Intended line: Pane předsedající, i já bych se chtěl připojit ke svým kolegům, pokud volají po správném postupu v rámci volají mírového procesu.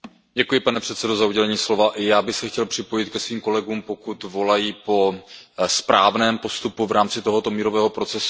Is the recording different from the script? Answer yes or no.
yes